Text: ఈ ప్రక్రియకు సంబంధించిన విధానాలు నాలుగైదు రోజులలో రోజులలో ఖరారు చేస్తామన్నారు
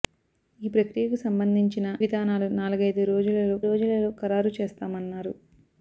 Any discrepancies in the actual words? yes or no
no